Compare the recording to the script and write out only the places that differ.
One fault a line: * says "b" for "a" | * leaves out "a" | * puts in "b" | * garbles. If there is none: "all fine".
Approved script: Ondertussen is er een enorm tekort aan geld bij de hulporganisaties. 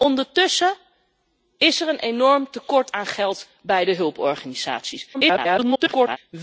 * garbles